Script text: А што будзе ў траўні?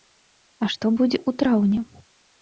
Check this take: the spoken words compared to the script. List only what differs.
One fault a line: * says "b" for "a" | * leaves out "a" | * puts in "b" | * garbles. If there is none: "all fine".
all fine